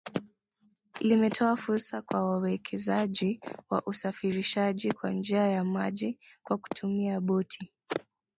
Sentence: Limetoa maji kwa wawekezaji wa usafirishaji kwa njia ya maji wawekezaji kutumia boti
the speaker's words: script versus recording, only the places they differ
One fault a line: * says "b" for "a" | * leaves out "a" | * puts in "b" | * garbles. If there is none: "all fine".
* says "fursa" for "maji"
* says "kwa" for "wawekezaji"